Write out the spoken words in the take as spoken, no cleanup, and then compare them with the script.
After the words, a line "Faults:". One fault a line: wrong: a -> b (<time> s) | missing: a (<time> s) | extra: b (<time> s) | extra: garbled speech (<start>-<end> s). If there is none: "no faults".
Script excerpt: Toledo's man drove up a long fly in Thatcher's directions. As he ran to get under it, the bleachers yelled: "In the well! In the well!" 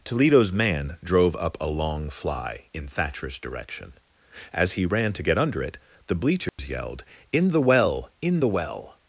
Toledo's man drove up a long fly in Thatcher's direction. As he ran to get under it, the bleachers yelled: "In the well! In the well!"
Faults:
wrong: directions -> direction (3.4 s)